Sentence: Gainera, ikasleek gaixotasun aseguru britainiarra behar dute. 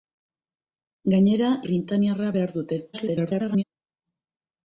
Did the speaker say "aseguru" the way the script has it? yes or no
no